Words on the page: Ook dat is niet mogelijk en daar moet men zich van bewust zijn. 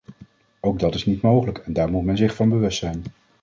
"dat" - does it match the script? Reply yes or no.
yes